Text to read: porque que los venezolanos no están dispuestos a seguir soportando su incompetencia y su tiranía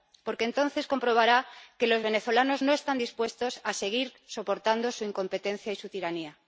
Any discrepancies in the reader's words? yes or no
yes